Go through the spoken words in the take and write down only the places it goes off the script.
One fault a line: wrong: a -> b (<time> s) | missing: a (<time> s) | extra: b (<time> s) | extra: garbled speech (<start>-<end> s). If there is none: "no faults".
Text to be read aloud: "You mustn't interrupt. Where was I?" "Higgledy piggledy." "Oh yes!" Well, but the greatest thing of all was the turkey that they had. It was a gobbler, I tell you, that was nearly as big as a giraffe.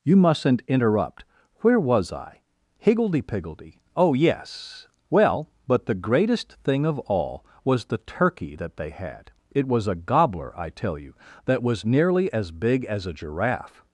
no faults